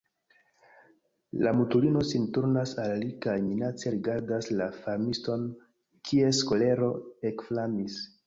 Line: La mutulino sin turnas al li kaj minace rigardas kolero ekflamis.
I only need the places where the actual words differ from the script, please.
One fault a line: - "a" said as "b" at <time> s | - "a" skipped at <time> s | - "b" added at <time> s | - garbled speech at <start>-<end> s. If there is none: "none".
- "la farmiston kies" added at 4.6 s